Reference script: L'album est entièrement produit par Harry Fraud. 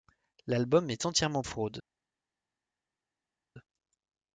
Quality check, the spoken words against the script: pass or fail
fail